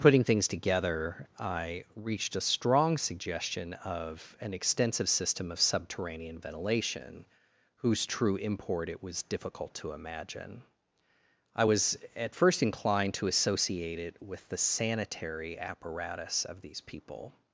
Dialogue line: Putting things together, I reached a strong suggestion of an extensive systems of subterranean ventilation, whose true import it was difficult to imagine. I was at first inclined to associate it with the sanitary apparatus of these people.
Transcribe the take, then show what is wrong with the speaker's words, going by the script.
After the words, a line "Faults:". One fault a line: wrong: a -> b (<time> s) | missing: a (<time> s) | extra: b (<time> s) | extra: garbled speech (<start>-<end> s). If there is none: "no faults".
Putting things together, I reached a strong suggestion of an extensive system of subterranean ventilation, whose true import it was difficult to imagine. I was at first inclined to associate it with the sanitary apparatus of these people.
Faults:
wrong: systems -> system (5.1 s)